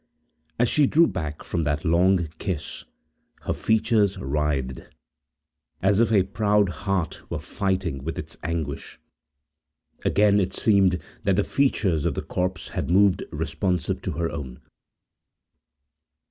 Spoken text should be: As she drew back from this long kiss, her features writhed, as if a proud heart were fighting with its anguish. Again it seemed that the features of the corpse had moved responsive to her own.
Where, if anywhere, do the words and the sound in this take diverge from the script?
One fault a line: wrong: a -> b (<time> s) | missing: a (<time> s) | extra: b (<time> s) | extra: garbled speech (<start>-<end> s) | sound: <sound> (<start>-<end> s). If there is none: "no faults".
wrong: this -> that (1.6 s)